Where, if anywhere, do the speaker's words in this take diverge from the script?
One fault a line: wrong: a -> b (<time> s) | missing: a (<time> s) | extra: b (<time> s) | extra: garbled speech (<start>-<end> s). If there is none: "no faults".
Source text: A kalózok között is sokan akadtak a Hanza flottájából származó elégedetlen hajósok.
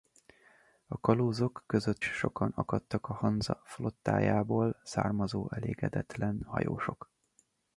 missing: is (2.0 s)